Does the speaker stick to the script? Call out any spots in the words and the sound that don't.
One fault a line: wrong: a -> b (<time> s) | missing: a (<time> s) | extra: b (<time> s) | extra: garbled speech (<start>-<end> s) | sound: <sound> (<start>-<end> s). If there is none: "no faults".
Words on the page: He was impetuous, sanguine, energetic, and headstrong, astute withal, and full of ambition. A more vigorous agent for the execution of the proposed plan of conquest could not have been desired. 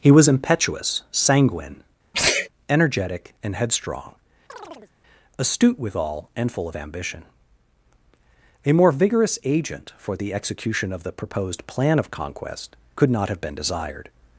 sound: sneeze (2.1-2.5 s)
sound: chirp (4.5-4.9 s)